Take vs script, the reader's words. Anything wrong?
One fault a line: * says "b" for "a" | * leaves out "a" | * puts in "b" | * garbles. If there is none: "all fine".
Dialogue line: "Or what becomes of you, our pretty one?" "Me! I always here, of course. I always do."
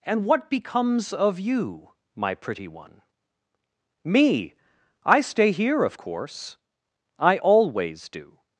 * says "And" for "Or"
* says "my" for "our"
* says "stay" for "always"